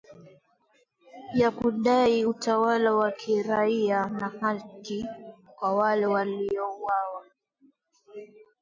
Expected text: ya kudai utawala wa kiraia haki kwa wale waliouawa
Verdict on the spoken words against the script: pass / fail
fail